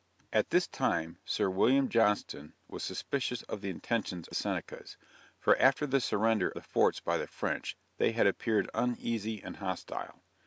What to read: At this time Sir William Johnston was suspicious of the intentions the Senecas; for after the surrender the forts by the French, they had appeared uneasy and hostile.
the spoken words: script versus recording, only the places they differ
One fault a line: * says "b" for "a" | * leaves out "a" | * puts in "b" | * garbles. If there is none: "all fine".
all fine